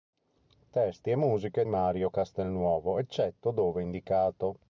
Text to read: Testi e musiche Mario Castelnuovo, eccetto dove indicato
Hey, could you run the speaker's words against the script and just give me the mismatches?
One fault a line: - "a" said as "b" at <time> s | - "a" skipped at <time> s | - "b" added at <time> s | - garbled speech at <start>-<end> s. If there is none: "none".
none